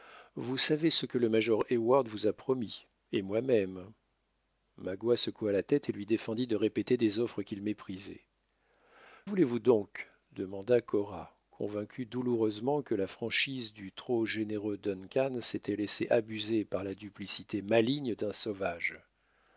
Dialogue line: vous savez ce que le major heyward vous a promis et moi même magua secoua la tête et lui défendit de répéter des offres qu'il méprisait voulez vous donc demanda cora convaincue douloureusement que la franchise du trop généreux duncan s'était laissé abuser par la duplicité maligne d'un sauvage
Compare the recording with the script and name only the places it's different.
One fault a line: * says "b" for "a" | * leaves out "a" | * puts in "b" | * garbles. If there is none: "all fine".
all fine